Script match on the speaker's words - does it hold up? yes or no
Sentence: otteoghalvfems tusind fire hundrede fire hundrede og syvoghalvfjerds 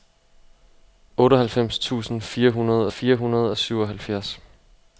yes